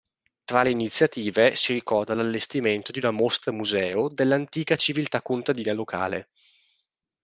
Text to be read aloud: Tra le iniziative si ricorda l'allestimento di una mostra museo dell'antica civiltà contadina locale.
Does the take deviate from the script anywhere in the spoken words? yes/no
no